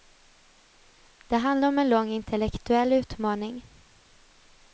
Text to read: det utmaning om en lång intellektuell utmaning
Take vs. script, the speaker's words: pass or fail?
fail